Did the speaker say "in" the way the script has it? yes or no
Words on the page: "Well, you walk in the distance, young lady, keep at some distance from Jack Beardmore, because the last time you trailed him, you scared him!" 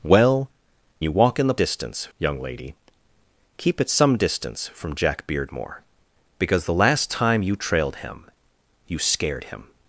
yes